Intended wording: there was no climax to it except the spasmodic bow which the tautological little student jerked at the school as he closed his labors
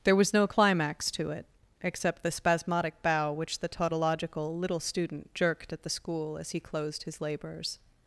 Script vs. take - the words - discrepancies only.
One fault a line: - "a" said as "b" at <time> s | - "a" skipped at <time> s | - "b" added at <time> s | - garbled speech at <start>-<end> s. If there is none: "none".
none